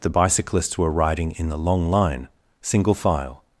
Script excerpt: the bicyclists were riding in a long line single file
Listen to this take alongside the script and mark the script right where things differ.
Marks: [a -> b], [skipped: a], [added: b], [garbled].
the bicyclists were riding in [a -> the] long line single file